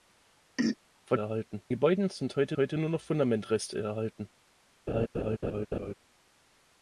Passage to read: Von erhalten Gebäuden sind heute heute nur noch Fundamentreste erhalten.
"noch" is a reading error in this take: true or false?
false